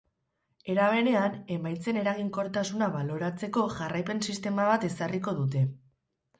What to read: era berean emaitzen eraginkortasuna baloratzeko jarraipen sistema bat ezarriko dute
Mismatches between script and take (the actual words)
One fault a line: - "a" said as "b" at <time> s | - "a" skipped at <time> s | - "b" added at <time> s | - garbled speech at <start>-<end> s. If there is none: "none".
none